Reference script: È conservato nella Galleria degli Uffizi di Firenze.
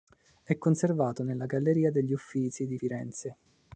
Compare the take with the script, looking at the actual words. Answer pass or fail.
pass